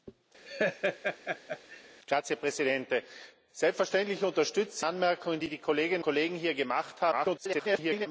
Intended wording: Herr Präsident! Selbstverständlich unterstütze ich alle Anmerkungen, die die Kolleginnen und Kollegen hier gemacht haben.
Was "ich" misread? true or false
true